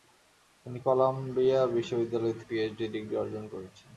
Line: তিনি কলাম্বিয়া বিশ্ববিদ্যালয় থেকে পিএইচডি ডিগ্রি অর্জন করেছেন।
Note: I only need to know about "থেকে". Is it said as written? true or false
false